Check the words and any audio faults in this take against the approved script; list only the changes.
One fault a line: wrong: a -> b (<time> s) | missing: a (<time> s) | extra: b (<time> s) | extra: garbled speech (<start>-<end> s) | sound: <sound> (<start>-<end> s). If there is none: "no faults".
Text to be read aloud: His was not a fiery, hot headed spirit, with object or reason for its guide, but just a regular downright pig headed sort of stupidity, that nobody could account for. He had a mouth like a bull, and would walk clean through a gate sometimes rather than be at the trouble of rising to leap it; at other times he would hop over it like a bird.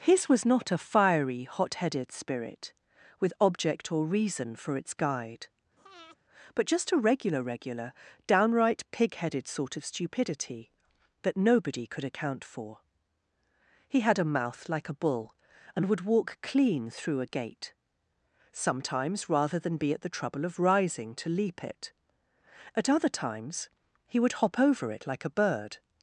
sound: breath (5.8-6.2 s)
extra: regular (7.4 s)